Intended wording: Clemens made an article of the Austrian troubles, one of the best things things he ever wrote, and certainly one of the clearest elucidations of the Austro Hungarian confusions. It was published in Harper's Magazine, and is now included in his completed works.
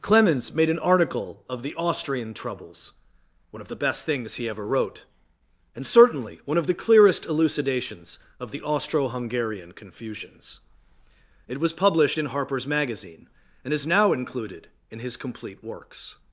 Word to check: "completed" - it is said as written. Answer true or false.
false